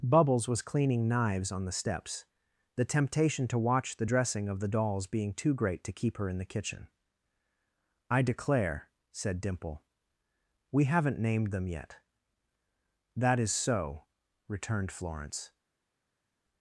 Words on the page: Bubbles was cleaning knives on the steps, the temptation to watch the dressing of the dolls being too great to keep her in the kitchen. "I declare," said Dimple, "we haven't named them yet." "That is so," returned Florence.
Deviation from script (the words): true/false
false